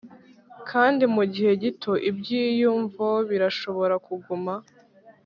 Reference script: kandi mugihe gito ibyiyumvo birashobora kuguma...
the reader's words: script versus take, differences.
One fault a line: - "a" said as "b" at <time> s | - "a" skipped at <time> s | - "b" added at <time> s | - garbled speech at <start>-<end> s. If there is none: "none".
none